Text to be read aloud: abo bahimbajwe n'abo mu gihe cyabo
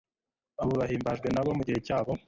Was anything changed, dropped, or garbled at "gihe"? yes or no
no